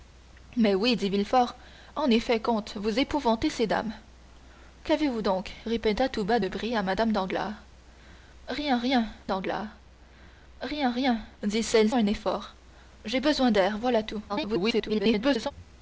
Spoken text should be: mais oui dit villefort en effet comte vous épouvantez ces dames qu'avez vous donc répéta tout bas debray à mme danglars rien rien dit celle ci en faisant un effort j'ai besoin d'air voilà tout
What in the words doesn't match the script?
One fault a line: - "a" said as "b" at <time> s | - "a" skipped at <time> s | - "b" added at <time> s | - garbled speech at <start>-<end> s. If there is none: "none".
- "dit celle ci en faisant" said as "danglars rien rien dit celle" at 9.2 s
- garbled speech at 14.3-15.5 s